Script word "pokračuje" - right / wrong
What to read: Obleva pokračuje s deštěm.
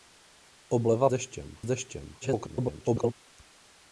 wrong